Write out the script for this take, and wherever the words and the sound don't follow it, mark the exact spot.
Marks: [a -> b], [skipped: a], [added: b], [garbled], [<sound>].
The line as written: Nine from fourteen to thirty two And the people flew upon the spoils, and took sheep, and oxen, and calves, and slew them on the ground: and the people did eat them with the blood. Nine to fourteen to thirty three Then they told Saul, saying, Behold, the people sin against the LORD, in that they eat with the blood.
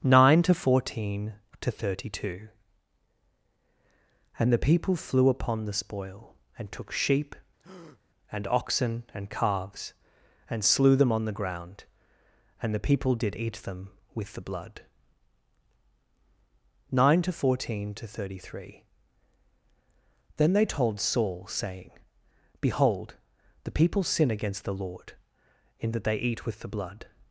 Nine [from -> to] fourteen to thirty two And the people flew upon the [spoils, -> spoil] and took sheep, [breath] and oxen, and calves, and slew them on the ground: and the people did eat them with the blood. Nine to fourteen to thirty three Then they told Saul, saying, Behold, the people sin against the LORD, in that they eat with the blood.